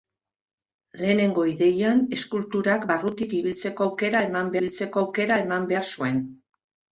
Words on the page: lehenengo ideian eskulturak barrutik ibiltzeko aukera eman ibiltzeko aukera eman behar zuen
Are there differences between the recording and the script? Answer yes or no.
no